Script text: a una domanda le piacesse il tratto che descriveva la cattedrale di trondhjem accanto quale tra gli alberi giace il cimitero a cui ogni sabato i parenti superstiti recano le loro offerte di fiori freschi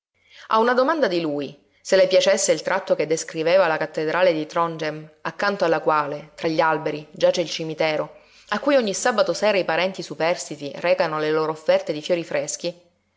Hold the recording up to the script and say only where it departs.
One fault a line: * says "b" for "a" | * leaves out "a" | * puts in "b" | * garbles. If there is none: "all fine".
* puts in "di lui se"
* puts in "alla"
* puts in "sera"